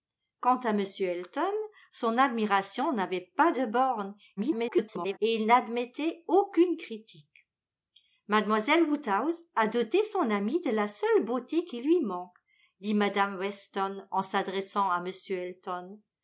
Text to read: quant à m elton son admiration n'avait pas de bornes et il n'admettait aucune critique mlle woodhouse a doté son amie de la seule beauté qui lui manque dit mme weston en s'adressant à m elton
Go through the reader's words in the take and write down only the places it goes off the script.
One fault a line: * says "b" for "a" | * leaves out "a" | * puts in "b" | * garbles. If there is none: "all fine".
* garbles